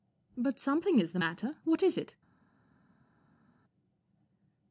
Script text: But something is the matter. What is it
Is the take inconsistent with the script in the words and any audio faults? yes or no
no